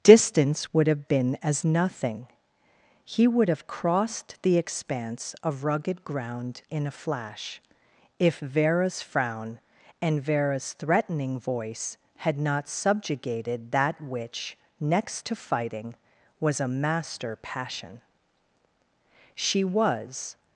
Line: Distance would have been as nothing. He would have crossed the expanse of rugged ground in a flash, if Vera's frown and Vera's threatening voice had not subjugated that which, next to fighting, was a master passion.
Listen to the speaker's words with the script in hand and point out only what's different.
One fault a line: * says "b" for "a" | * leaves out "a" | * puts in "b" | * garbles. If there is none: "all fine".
* puts in "She was"